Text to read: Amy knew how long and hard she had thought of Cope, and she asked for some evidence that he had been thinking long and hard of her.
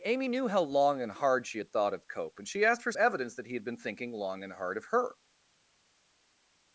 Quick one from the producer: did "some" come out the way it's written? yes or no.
no